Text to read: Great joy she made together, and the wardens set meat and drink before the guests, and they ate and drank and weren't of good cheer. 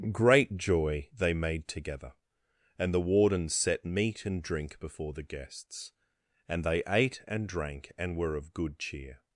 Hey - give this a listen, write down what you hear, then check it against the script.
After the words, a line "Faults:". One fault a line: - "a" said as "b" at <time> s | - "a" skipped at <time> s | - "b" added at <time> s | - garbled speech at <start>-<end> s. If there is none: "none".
Great joy they made together, and the wardens set meat and drink before the guests, and they ate and drank and were of good cheer.
Faults:
- "she" said as "they" at 1.1 s
- "weren't" said as "were" at 8.2 s